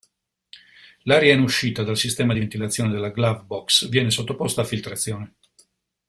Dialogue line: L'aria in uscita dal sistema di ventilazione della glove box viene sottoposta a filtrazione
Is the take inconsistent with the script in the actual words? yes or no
no